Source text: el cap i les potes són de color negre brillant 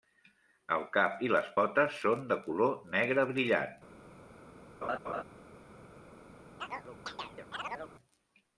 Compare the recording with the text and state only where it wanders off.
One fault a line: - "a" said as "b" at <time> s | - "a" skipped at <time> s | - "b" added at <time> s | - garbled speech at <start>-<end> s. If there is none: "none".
none